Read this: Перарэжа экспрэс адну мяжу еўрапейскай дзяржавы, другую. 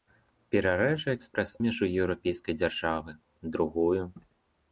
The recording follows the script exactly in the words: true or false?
false